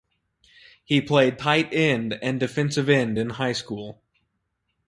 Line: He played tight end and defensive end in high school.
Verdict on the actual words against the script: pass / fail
pass